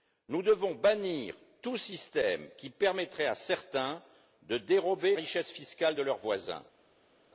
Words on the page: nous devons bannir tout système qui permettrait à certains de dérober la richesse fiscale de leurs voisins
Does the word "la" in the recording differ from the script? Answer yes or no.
yes